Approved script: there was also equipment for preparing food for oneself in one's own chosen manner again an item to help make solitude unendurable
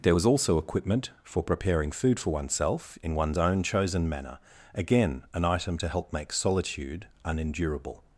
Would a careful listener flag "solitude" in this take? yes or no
no